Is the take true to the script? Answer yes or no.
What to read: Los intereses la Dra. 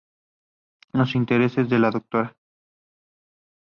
no